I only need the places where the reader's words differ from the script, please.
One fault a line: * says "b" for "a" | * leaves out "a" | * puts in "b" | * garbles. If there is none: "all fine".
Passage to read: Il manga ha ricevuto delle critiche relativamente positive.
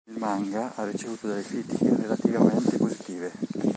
all fine